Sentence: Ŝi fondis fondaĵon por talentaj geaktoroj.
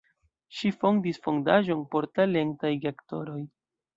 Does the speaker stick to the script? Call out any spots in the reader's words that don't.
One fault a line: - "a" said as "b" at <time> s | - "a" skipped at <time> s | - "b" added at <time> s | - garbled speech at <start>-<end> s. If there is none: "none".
none